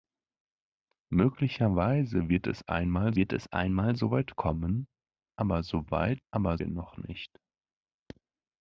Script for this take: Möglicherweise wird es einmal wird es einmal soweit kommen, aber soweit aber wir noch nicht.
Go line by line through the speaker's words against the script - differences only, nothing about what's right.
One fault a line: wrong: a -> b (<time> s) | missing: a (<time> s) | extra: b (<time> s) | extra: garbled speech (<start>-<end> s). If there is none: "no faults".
no faults